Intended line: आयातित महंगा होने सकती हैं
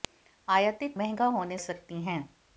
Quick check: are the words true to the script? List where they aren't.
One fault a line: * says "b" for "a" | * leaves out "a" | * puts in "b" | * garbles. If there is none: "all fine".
all fine